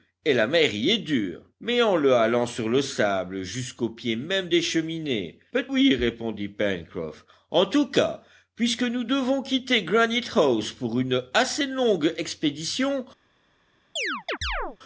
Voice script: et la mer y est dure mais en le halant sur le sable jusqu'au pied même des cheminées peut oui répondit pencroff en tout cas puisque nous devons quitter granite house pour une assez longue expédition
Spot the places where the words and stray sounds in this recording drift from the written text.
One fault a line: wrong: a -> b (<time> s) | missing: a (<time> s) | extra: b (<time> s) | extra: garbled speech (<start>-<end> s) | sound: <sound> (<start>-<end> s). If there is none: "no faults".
sound: chirp (14.0-14.8 s)